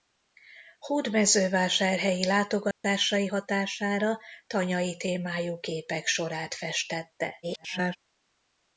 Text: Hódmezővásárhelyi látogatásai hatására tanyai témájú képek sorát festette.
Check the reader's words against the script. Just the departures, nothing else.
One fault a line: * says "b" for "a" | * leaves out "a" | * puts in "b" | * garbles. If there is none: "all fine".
* garbles